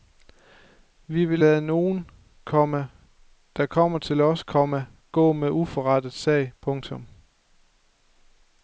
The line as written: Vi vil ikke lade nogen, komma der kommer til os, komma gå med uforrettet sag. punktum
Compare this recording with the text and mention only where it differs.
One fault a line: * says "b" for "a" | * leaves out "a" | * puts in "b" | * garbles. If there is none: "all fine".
* leaves out "ikke"